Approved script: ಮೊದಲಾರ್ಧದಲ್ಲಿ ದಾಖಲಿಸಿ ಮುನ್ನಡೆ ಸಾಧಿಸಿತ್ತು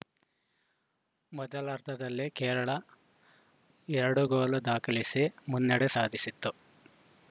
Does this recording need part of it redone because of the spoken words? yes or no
yes